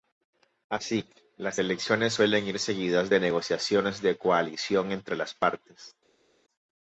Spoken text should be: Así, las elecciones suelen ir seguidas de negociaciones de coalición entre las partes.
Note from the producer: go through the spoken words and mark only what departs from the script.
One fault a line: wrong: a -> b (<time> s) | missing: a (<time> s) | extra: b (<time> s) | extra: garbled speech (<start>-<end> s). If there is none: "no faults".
no faults